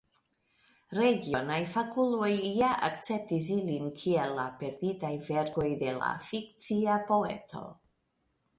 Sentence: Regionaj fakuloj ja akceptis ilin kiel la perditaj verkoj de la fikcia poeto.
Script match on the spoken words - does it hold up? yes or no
yes